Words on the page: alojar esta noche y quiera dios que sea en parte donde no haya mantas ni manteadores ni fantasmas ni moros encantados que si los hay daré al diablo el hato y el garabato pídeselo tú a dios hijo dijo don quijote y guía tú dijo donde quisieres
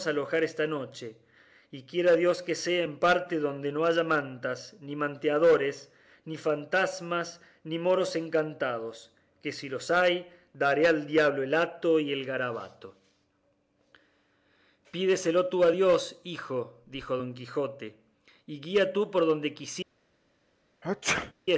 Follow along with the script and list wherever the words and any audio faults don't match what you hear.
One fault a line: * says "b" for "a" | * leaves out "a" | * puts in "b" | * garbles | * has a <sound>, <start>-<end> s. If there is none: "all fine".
* says "por" for "dijo"
* has a sneeze, 20.8-21.3 s